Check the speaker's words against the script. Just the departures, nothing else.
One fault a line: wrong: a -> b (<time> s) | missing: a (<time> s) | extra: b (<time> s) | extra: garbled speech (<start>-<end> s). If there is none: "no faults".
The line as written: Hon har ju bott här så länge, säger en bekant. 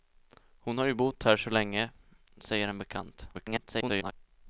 extra: garbled speech (3.3-4.1 s)